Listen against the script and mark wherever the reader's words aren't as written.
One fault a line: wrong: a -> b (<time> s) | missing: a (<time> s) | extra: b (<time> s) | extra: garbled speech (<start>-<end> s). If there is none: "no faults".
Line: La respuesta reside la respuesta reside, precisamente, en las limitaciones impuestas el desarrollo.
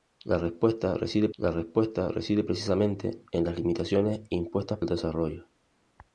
no faults